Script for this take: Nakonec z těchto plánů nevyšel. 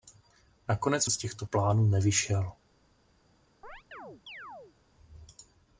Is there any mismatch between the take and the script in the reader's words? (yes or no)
no